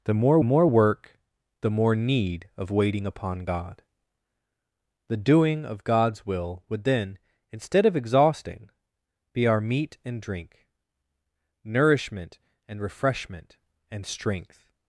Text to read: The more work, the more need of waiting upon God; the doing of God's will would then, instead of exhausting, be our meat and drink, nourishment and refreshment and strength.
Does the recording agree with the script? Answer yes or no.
no